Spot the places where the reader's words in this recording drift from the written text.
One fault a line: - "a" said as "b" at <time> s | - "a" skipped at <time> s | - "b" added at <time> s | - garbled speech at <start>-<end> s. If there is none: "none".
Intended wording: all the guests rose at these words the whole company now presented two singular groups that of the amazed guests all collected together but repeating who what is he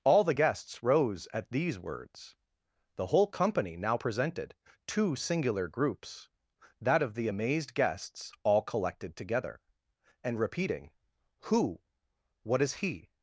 - "but" said as "and" at 10.2 s